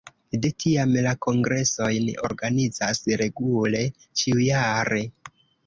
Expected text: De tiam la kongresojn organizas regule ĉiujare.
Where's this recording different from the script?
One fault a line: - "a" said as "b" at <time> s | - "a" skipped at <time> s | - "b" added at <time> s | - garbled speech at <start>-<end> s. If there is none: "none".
none